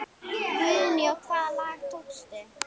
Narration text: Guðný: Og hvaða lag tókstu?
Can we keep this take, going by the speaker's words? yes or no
yes